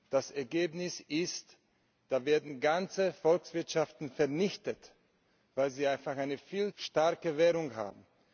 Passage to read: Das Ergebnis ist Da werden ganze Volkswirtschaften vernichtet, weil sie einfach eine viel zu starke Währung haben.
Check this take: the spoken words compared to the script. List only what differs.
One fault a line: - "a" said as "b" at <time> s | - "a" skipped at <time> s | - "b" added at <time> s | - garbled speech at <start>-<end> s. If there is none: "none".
- "zu" skipped at 6.7 s